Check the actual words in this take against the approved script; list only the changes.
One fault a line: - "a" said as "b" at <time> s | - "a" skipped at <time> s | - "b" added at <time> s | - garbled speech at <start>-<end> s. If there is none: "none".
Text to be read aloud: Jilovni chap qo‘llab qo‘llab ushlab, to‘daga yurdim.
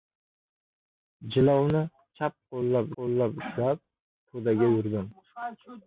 none